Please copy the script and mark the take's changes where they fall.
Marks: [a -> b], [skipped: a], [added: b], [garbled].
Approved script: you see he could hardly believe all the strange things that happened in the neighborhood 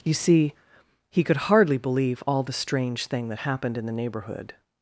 you see he could hardly believe all the strange [things -> thing] that happened in the neighborhood